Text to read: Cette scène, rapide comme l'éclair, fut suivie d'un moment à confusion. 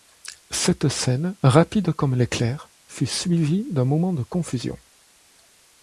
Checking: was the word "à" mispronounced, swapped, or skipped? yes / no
yes